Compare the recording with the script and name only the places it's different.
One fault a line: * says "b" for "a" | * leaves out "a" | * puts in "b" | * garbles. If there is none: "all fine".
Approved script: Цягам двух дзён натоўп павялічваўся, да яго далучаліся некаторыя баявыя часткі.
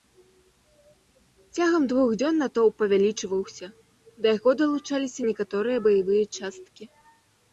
all fine